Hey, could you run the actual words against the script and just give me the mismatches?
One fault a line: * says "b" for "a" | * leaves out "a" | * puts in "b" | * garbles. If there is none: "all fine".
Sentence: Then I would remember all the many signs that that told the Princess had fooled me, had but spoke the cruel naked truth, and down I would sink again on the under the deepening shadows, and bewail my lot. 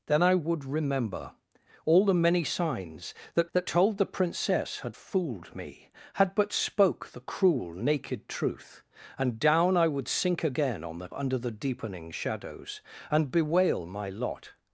all fine